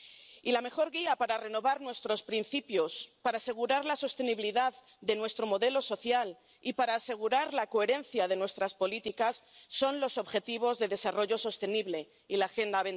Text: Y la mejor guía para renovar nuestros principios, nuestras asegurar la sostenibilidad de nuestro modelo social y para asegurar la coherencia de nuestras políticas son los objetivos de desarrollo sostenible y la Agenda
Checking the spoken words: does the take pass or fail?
fail